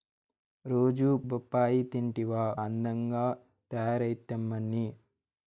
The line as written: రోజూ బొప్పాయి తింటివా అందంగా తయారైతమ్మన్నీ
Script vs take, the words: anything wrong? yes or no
no